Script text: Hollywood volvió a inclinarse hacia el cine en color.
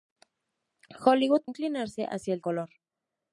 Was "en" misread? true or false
true